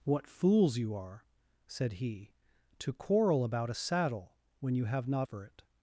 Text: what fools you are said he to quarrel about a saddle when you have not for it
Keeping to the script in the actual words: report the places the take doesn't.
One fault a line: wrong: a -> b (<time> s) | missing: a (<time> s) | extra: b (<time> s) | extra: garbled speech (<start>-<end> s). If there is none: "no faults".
no faults